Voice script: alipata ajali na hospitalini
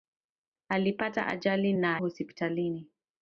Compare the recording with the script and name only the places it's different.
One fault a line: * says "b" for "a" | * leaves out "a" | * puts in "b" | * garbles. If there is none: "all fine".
all fine